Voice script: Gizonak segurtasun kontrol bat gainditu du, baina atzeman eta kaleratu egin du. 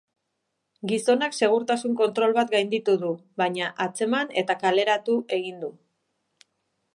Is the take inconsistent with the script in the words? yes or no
no